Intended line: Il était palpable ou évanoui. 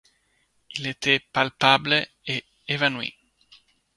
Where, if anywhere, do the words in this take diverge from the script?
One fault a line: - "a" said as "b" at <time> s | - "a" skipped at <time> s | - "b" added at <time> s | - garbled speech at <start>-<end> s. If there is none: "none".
- "ou" said as "et" at 2.2 s